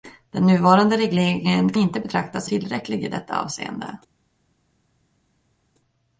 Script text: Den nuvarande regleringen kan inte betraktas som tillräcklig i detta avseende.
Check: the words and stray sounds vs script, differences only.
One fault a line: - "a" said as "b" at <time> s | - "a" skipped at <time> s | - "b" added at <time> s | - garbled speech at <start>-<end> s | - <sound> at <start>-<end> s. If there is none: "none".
- "kan" skipped at 1.7 s
- "som" skipped at 2.5 s